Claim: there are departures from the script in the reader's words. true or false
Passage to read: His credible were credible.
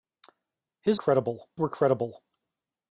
false